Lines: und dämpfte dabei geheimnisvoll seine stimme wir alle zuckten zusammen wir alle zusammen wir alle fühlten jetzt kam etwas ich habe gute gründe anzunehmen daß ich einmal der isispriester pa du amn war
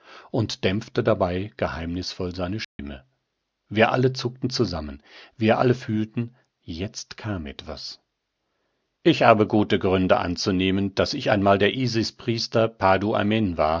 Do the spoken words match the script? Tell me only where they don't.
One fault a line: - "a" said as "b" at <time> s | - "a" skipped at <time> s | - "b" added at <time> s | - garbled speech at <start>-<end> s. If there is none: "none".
- "zusammen wir alle" skipped at 5.7 s